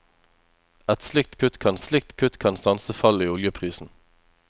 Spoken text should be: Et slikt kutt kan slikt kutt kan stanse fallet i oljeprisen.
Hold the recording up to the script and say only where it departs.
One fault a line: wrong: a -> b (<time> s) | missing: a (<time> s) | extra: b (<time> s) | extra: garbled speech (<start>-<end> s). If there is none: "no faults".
no faults